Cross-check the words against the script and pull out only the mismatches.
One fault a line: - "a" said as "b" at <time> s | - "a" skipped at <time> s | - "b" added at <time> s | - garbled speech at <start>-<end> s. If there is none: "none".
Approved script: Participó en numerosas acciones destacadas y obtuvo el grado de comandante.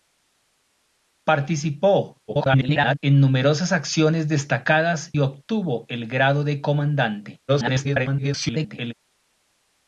- garbled speech at 2.3-3.0 s
- "y" skipped at 5.1 s
- garbled speech at 7.5-8.9 s